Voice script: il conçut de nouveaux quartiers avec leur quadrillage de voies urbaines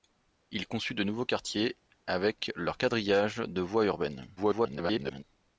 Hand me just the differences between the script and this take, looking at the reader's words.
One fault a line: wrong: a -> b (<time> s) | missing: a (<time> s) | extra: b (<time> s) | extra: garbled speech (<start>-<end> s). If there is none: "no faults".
extra: garbled speech (4.4-5.2 s)